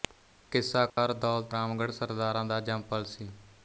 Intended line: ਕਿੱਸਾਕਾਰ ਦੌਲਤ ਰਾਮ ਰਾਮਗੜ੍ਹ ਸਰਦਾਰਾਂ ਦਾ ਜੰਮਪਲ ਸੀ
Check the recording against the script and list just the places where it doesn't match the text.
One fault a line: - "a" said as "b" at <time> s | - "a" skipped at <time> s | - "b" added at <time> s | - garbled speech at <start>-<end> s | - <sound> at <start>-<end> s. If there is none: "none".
- dropout at 0.9-1.0 s
- "ਰਾਮ" skipped at 1.5 s